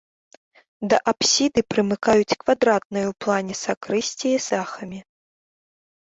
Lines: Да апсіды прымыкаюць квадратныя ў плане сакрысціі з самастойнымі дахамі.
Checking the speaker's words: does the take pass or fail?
fail